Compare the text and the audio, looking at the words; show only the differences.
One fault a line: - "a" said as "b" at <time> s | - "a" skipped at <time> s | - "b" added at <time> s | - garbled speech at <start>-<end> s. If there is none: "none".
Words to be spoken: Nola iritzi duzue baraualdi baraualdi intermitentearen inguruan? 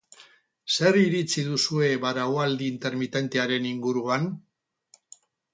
- "Nola" said as "Zer" at 0.8 s
- "baraualdi" skipped at 2.7 s